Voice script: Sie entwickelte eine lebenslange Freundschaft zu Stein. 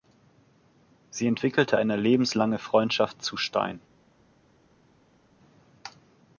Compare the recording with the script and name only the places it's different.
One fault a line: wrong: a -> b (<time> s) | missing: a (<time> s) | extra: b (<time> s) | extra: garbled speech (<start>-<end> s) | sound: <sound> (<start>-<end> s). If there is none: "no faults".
no faults